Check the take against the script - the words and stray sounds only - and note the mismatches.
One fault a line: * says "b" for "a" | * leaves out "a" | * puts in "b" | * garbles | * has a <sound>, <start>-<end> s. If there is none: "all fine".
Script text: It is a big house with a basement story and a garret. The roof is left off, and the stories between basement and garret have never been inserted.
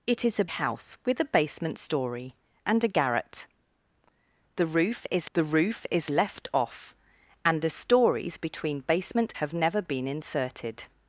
* leaves out "big"
* puts in "the roof is"
* leaves out "and garret"